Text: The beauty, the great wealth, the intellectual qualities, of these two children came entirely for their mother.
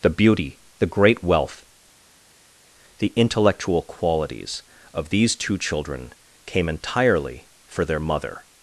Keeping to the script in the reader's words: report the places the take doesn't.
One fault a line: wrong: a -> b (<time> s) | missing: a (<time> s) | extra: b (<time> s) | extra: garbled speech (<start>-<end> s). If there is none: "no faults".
no faults